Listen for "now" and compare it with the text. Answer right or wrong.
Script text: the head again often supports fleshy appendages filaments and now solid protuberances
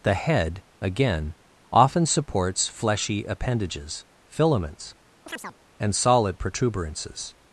wrong